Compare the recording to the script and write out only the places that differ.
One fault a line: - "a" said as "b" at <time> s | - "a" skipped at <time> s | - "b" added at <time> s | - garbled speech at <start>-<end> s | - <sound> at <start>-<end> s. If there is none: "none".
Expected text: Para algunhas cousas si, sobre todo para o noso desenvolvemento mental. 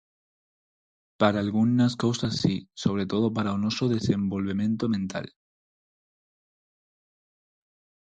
none